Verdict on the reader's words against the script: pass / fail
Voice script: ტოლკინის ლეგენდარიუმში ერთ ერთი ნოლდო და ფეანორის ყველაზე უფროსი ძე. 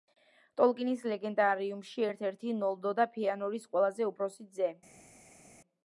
pass